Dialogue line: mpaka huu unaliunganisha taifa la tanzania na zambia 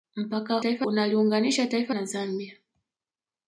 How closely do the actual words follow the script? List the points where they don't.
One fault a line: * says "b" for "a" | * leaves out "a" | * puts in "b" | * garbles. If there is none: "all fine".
* says "taifa" for "huu"
* leaves out "la tanzania"